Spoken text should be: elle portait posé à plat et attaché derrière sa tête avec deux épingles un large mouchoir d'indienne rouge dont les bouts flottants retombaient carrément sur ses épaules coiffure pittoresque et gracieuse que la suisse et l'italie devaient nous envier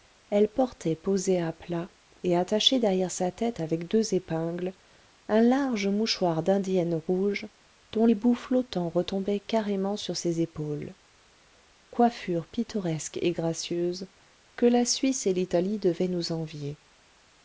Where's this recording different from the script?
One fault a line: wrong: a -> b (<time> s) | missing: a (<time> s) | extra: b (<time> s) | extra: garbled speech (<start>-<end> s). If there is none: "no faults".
no faults